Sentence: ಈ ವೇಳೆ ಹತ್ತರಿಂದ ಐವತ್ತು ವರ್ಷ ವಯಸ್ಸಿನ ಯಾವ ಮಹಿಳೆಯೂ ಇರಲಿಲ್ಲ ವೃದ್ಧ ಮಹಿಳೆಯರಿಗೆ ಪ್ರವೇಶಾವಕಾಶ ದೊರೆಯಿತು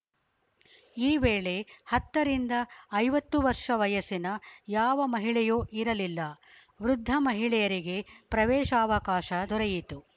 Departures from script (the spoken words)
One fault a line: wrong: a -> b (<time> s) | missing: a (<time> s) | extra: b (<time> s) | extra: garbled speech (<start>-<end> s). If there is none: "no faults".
no faults